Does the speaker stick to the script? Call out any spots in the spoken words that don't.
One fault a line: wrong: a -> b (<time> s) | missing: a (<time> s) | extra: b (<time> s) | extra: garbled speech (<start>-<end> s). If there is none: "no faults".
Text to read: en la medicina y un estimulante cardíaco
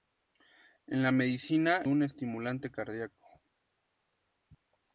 missing: y (1.9 s)